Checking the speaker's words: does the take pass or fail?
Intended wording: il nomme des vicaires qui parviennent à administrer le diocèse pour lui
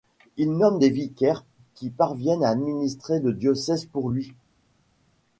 pass